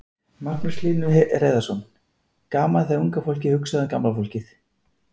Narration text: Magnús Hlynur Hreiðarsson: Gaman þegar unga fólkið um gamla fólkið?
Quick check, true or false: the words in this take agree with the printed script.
false